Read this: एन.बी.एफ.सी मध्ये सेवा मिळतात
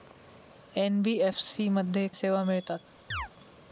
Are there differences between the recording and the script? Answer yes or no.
no